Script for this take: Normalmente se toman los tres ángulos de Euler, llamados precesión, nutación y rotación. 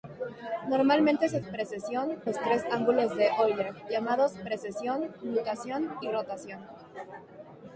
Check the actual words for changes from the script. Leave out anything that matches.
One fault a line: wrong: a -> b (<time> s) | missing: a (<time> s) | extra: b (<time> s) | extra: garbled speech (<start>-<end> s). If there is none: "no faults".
wrong: toman -> precesión (1.5 s)